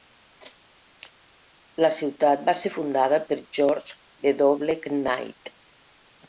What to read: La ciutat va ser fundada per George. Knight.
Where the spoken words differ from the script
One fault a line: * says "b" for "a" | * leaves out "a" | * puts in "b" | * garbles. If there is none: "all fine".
* puts in "W"